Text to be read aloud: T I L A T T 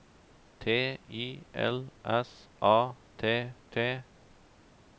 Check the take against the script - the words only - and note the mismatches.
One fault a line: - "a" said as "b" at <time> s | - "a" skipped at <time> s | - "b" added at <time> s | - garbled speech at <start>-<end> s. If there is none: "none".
- "S" added at 2.0 s